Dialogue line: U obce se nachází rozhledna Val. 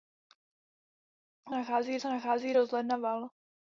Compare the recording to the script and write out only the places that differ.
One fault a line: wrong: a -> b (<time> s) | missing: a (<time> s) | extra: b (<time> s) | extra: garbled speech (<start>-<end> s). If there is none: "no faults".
wrong: obce -> nachází (1.5 s)